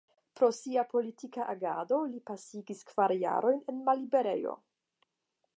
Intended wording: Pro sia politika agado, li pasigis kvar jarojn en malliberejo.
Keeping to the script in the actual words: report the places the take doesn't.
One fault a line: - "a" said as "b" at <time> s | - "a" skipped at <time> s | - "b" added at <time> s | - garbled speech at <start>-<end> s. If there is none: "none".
none